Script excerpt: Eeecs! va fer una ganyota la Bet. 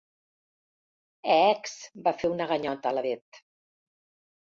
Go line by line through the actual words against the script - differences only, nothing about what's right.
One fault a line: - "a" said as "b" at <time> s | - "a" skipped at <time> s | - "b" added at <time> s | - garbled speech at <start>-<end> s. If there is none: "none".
none